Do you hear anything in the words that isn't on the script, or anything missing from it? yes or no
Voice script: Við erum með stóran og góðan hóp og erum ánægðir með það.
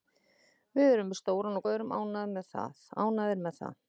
yes